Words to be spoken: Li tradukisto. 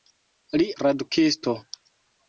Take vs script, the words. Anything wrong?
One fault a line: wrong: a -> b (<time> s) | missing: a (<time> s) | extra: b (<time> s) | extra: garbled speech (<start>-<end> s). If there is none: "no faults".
no faults